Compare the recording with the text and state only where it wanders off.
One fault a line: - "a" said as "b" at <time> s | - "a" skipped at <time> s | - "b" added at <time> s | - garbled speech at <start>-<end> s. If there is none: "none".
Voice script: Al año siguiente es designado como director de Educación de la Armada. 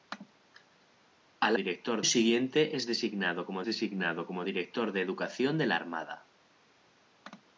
- "año" said as "director" at 1.6 s
- "designado como" added at 3.6 s